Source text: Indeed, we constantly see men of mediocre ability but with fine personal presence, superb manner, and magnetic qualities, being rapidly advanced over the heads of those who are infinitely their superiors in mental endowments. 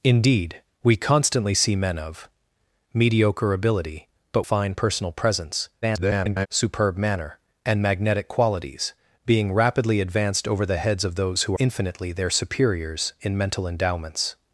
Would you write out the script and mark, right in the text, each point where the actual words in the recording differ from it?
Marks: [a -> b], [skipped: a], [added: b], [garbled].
Indeed, we constantly see men of mediocre ability but [skipped: with] fine personal presence, [garbled] superb manner, and magnetic qualities, being rapidly advanced over the heads of those who [skipped: are] infinitely their superiors in mental endowments.